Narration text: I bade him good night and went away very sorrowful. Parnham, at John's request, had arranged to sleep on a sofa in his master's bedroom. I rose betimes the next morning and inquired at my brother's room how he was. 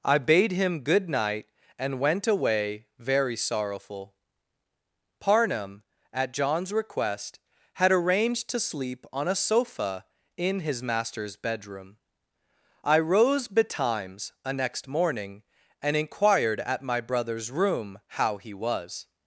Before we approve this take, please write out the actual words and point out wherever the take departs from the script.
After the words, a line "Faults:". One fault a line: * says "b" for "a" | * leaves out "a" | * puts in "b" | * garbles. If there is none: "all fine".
I bade him good night and went away very sorrowful. Parnham, at John's request, had arranged to sleep on a sofa in his master's bedroom. I rose betimes a next morning and inquired at my brother's room how he was.
Faults:
* says "a" for "the"